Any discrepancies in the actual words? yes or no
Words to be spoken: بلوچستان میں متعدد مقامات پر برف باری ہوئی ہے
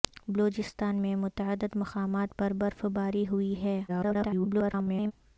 yes